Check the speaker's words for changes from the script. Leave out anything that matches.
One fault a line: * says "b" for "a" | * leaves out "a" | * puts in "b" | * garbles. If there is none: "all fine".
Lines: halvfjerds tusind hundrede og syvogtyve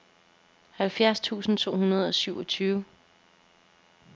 * puts in "to"